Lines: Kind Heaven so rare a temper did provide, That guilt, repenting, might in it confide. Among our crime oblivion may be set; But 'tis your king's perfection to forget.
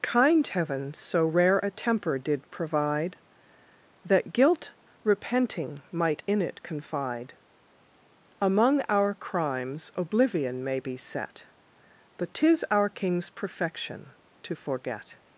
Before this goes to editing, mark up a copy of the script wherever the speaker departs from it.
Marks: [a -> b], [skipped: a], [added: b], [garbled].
Kind Heaven so rare a temper did provide, That guilt, repenting, might in it confide. Among our [crime -> crimes] oblivion may be set; But 'tis [your -> our] king's perfection to forget.